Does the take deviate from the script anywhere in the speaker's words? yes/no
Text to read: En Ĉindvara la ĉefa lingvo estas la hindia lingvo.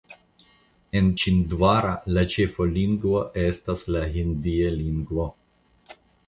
no